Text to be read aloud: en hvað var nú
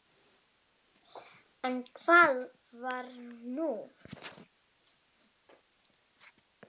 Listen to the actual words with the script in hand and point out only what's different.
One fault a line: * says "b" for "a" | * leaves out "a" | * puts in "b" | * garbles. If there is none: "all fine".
all fine